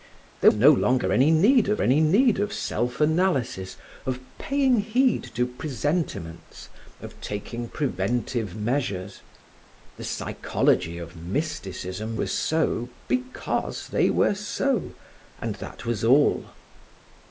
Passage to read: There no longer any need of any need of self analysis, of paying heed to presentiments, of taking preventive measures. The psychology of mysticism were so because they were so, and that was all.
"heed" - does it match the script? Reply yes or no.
yes